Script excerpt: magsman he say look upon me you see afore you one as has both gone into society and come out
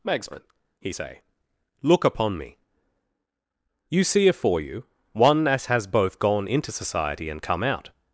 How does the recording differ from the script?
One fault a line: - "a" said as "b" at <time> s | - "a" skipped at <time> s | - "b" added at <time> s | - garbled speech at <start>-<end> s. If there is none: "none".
none